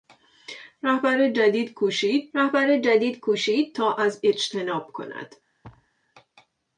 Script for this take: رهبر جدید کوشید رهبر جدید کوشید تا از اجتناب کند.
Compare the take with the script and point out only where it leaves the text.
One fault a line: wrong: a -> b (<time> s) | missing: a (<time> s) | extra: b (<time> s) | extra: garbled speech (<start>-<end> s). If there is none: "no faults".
no faults